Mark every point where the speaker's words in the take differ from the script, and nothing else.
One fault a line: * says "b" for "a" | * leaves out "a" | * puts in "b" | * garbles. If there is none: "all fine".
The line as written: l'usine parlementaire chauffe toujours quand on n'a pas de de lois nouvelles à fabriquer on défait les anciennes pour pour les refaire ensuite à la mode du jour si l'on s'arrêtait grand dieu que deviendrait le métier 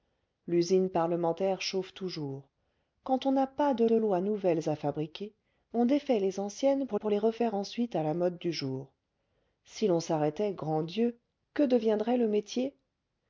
all fine